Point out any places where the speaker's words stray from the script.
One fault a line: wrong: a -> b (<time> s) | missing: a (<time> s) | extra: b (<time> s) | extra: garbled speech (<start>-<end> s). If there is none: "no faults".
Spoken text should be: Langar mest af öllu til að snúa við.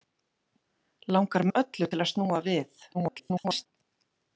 missing: mest (1.4 s)
extra: garbled speech (2.9-3.7 s)